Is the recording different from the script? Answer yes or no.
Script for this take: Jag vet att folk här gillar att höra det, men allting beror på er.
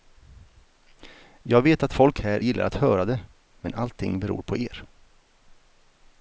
no